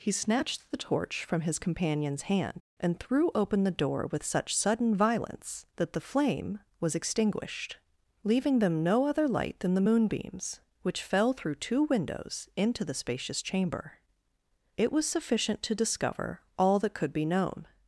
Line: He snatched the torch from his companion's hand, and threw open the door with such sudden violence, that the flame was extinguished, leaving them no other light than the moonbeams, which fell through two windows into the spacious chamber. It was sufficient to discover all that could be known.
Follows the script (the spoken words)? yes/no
yes